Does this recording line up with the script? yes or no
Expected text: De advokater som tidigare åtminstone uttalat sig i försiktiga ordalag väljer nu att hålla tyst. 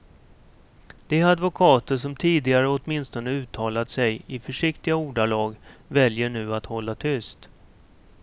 yes